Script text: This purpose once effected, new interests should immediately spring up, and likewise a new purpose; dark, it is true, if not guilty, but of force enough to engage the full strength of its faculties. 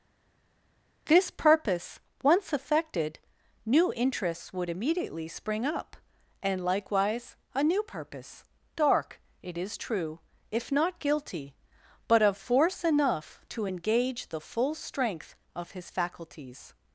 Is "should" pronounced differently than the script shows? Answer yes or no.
yes